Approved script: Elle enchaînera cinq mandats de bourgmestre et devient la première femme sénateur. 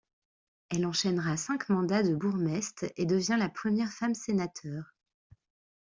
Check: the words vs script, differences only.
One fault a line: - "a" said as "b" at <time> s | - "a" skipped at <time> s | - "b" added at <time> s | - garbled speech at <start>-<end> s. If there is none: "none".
none